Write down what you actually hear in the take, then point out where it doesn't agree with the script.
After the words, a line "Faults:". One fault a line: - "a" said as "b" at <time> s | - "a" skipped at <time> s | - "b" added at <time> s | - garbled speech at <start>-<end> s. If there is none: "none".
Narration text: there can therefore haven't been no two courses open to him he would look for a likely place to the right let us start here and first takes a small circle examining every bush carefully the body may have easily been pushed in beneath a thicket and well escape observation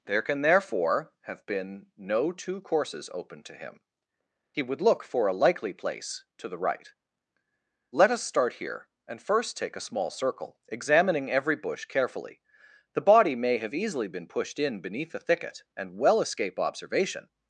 there can therefore have been no two courses open to him he would look for a likely place to the right let us start here and first take a small circle examining every bush carefully the body may have easily been pushed in beneath a thicket and well escape observation
Faults:
- "haven't" said as "have" at 1.2 s
- "takes" said as "take" at 9.6 s